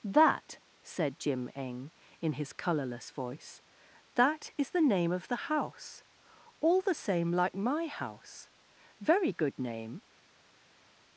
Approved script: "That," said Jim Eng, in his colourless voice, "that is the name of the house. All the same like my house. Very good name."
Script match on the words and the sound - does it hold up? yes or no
yes